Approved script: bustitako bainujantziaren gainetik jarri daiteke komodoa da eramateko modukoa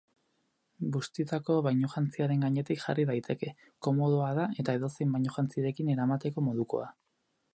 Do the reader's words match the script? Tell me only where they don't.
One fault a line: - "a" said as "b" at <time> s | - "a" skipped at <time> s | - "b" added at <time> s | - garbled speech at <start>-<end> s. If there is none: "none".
- "eta edozein bainujantzirekin" added at 4.6 s